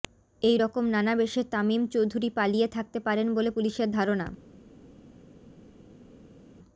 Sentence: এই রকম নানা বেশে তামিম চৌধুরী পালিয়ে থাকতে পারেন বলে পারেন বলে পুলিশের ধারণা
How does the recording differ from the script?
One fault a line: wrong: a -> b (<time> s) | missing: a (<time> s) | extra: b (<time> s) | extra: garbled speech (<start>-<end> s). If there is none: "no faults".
missing: পারেন বলে (3.5 s)